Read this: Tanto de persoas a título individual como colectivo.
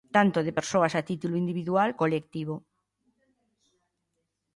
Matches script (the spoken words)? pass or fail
fail